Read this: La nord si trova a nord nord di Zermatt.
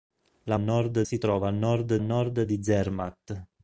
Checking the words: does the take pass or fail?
pass